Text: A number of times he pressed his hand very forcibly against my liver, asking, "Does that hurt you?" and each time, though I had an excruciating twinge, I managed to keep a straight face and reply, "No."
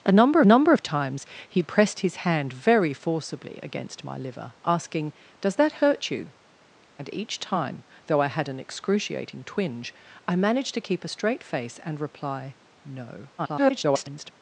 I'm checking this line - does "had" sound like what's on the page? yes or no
yes